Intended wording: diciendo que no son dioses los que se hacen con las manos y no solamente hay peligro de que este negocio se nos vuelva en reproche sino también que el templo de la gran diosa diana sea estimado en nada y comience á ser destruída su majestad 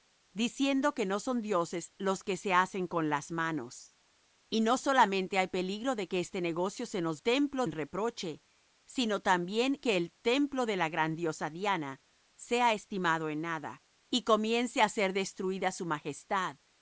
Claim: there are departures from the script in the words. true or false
true